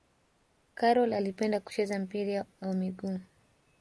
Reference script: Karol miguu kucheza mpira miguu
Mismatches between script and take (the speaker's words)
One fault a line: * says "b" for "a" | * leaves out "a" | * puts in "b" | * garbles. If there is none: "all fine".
* says "alipenda" for "miguu"
* puts in "wa"